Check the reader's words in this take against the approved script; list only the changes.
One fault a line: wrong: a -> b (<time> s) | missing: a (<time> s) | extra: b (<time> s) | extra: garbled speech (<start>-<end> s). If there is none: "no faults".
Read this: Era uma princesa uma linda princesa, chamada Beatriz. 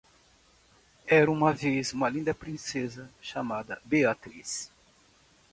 wrong: princesa -> vez (1.5 s)